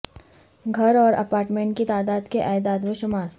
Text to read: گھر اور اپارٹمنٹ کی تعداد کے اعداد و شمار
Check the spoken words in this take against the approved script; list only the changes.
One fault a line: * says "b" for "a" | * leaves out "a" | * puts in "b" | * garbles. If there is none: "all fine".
all fine